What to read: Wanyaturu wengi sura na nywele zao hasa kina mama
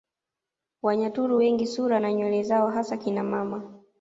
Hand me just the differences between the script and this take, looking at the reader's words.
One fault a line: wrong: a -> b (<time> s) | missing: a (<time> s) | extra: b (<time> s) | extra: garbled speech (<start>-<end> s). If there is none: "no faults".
no faults